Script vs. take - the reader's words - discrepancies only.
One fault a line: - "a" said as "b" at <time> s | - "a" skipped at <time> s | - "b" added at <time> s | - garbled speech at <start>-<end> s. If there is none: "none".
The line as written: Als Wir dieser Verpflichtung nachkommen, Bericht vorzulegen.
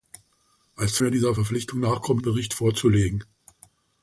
none